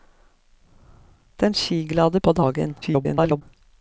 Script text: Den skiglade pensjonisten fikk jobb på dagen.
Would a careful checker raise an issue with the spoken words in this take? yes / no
yes